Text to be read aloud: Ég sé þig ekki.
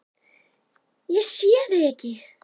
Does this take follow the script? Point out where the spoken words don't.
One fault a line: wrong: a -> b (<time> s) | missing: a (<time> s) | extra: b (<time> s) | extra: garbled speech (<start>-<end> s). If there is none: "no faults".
no faults